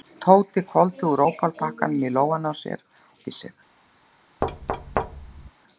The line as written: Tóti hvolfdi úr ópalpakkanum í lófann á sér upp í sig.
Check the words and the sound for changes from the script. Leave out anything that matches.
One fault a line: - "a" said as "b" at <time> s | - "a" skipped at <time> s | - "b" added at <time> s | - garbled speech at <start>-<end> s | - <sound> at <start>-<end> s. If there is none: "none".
- thud at 4.4-5.5 s